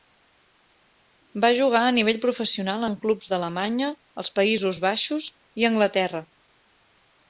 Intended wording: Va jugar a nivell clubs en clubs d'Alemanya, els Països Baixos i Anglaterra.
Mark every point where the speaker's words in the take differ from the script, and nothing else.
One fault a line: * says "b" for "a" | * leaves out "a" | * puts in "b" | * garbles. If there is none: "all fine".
* says "professional" for "clubs"